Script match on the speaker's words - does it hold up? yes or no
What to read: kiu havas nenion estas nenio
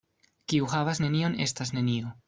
yes